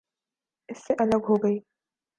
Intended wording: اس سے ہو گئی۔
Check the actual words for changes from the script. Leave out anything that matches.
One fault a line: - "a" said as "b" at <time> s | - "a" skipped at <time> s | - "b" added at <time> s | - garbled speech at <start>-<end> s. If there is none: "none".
- "الگ" added at 1.0 s